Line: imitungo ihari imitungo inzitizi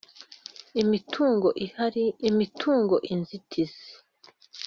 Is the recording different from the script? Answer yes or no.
no